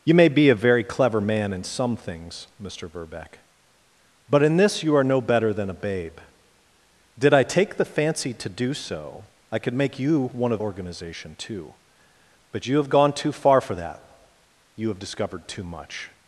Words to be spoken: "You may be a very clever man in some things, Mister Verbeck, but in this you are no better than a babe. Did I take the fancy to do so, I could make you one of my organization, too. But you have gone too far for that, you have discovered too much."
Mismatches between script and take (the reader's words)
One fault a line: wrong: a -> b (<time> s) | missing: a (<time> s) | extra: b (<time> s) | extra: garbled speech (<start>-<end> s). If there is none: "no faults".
missing: my (10.6 s)